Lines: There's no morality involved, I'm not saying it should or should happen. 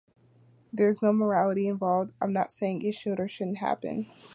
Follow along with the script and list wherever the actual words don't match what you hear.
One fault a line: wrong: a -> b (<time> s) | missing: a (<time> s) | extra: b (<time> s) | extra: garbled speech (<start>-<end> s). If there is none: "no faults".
wrong: should -> shouldn't (3.3 s)